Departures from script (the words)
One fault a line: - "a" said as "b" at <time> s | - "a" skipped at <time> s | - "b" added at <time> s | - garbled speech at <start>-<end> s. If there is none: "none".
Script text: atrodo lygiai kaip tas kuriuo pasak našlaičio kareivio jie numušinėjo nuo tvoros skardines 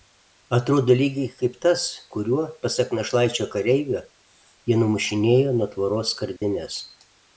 none